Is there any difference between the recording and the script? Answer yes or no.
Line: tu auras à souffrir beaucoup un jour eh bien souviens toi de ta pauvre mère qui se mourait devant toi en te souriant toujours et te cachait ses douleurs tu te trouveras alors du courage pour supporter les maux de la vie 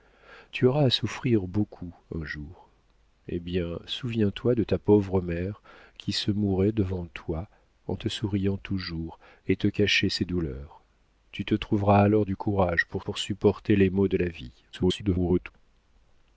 yes